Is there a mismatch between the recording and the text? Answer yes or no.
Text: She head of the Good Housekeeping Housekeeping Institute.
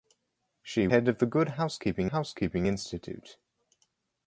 no